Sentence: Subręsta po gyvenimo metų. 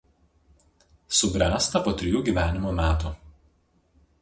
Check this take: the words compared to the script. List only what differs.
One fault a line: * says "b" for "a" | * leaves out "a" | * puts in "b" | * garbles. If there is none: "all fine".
* puts in "trijų"